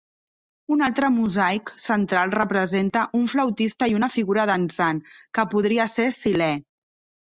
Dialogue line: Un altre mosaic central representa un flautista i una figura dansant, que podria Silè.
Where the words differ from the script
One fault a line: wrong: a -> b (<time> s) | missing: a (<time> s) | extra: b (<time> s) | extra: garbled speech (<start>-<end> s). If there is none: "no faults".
extra: ser (6.0 s)